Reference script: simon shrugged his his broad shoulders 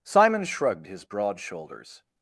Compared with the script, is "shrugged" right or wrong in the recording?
right